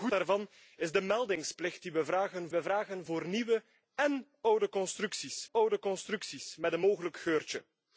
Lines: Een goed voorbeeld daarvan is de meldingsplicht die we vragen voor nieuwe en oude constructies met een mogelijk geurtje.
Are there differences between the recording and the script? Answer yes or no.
yes